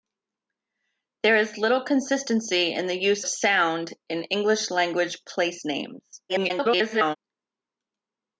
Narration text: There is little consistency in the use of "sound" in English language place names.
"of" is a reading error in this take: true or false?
true